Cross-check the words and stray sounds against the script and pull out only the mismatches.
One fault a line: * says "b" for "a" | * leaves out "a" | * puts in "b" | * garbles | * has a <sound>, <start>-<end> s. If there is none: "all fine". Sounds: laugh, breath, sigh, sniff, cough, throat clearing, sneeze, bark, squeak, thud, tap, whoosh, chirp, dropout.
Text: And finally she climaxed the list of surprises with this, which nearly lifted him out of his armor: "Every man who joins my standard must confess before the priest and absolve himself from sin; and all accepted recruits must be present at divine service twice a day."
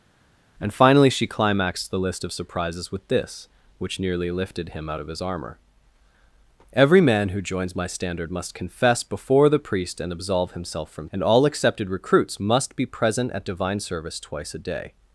* leaves out "sin"